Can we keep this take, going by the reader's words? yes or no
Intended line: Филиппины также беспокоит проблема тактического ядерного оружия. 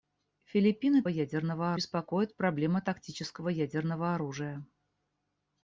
no